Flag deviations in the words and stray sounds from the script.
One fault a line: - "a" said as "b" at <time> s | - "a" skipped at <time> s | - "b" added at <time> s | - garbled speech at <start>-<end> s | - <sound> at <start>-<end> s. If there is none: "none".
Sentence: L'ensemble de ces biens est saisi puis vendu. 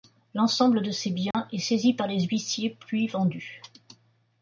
- dropout at 1.3-1.3 s
- "par les huissiers" added at 1.9 s